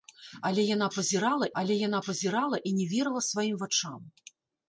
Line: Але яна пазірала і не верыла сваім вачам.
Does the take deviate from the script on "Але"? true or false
false